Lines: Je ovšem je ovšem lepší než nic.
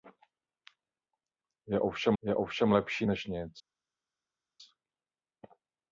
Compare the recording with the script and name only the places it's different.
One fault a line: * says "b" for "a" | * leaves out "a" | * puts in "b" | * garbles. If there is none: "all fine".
all fine